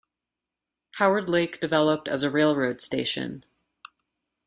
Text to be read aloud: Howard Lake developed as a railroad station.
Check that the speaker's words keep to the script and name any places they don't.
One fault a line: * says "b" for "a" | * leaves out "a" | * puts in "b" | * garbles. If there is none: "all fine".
all fine